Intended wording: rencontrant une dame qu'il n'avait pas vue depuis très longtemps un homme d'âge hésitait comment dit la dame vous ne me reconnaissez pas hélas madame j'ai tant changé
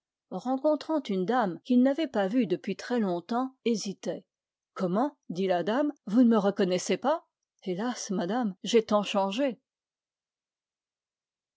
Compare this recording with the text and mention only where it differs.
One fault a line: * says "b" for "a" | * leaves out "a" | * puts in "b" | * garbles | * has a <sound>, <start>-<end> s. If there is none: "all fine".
* leaves out "un homme d'âge"